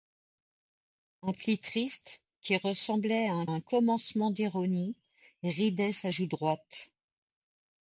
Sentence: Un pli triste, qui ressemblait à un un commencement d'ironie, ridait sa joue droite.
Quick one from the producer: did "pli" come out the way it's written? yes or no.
yes